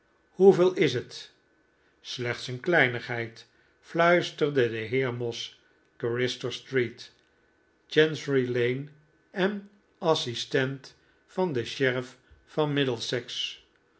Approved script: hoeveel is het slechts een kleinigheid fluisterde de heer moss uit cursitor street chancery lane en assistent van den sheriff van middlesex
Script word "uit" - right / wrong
wrong